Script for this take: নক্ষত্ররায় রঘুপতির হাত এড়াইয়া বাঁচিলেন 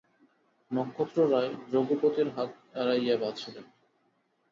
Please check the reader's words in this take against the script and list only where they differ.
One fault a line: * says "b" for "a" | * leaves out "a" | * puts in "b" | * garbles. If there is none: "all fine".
all fine